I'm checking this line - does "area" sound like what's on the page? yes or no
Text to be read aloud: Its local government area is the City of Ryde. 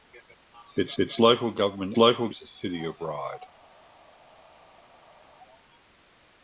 no